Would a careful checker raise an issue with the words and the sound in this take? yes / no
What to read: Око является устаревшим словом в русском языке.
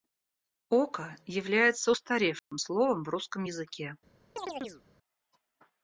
yes